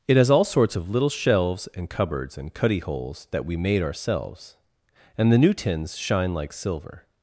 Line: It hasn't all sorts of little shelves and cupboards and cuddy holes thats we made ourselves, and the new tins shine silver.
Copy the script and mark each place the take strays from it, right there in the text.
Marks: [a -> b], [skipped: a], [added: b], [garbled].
It [hasn't -> has] all sorts of little shelves and cupboards and cuddy holes [thats -> that] we made ourselves, and the new tins shine [added: like] silver.